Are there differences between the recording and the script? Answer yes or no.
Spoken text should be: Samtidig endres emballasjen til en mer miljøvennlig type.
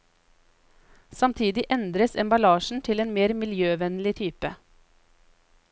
no